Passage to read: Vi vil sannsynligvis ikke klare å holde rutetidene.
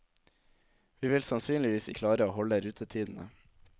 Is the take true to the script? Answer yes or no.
no